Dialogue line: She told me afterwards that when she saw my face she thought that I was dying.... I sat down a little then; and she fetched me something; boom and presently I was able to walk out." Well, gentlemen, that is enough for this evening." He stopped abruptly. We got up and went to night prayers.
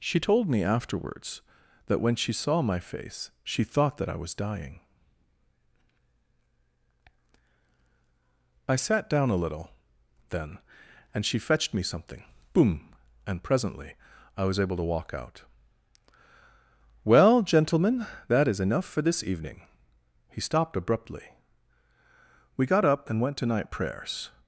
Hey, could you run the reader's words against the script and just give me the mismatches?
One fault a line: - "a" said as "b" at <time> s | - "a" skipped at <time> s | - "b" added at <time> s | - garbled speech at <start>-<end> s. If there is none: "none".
none